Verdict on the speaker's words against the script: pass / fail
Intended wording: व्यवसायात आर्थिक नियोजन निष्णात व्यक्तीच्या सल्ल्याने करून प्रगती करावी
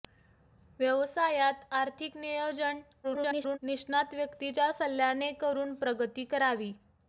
fail